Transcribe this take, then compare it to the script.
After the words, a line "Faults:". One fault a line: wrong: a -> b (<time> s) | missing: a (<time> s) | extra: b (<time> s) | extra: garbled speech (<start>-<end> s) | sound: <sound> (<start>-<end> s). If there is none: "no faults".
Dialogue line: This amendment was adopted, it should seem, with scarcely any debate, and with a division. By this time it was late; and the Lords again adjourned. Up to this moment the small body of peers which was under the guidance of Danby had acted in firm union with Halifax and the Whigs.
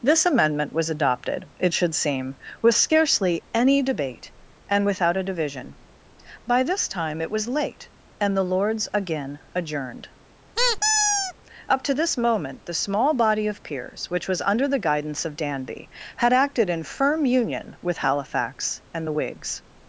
This amendment was adopted, it should seem, with scarcely any debate, and without a division. By this time it was late; and the Lords again adjourned. Up to this moment the small body of peers which was under the guidance of Danby had acted in firm union with Halifax and the Whigs.
Faults:
wrong: with -> without (4.8 s)
sound: squeak (10.6-11.3 s)